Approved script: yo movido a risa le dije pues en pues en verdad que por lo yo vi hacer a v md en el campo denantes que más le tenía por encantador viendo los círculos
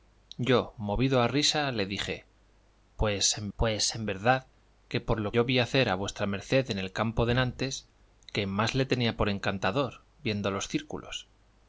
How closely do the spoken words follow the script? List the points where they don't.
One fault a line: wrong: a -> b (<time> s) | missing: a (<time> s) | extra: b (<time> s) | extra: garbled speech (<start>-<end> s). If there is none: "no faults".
no faults